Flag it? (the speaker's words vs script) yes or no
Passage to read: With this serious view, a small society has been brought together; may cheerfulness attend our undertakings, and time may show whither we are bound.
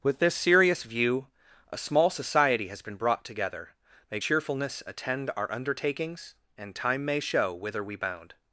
yes